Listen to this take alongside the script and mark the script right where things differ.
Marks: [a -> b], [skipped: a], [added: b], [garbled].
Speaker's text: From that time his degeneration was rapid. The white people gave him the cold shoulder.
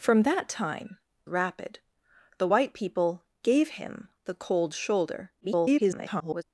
From that time [skipped: his degeneration was] rapid. The white people gave him the cold shoulder. [garbled]